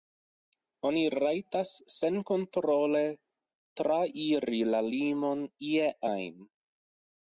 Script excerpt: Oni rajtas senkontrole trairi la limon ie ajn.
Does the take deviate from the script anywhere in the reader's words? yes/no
no